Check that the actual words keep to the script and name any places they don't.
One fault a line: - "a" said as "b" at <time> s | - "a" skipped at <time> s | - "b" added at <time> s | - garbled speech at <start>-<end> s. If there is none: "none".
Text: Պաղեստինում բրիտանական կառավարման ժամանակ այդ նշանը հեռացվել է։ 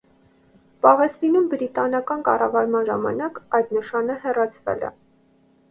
none